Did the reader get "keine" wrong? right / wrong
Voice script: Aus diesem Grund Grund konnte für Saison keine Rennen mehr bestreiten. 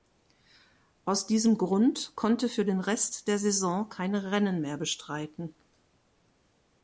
right